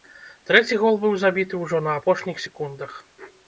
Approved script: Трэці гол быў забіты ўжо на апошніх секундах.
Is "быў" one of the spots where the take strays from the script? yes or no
no